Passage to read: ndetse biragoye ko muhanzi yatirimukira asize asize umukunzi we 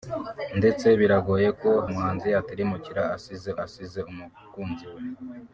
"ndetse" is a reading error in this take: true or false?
false